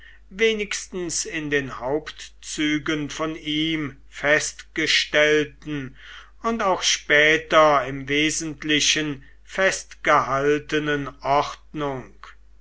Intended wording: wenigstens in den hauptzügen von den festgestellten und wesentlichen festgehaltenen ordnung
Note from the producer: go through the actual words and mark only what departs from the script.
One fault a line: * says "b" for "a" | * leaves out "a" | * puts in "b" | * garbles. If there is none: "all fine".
* says "ihm" for "den"
* puts in "auch später im"